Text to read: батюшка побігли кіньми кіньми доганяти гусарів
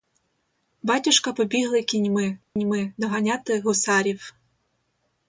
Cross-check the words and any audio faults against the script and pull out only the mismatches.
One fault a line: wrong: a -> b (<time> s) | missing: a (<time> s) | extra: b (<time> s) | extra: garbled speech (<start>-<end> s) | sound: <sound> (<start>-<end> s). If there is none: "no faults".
sound: dropout (2.4-2.6 s)